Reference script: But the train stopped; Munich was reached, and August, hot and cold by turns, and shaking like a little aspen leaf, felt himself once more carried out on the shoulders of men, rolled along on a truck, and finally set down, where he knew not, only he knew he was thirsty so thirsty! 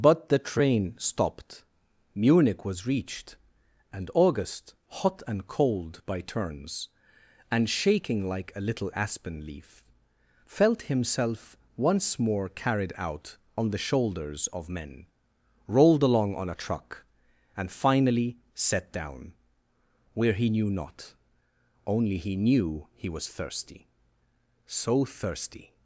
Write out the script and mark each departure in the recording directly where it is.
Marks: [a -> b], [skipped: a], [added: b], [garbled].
But the train stopped; Munich was reached, and August, hot and cold by turns, and shaking like a little aspen leaf, felt himself once more carried out on the shoulders of men, rolled along on a truck, and finally set down, where he knew not, only he knew he was thirsty so thirsty!